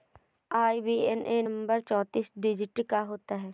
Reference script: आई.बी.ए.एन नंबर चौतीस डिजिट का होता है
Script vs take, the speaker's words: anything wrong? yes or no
no